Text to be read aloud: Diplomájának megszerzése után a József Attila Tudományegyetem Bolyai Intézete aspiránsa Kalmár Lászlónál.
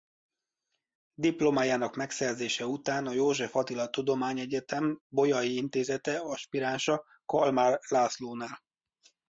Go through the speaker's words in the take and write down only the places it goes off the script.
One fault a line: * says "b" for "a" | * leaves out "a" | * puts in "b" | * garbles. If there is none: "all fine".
all fine